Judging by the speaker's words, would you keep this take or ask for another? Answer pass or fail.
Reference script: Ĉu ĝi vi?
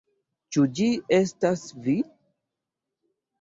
fail